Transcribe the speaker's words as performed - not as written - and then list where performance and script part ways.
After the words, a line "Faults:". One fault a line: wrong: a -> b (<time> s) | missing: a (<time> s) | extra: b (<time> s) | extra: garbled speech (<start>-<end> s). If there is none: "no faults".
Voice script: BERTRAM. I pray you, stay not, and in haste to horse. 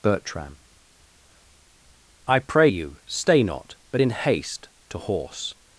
BERTRAM. I pray you, stay not, but in haste to horse.
Faults:
wrong: and -> but (3.9 s)